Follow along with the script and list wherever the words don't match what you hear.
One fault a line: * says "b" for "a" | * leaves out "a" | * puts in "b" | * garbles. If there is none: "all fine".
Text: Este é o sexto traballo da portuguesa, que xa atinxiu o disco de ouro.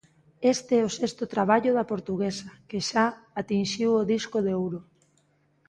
all fine